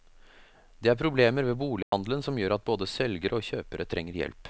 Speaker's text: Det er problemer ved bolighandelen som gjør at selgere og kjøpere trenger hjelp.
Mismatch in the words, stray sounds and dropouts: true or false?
true